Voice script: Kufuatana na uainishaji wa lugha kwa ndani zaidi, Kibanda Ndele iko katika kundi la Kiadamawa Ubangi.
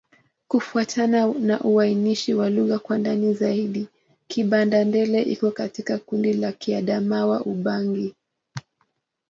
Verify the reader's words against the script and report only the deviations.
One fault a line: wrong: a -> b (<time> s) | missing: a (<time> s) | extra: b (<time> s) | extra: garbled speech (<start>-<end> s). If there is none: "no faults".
no faults